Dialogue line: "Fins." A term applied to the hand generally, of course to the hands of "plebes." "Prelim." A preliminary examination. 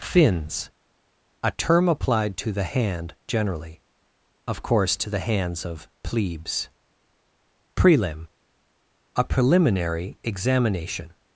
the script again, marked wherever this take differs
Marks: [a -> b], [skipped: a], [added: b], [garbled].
"Fins." A term applied to the hand generally, of course to the hands of "plebes." "Prelim." A preliminary examination.